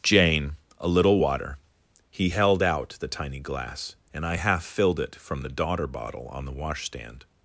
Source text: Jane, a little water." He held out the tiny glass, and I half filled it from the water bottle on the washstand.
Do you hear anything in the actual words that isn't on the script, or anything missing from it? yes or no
yes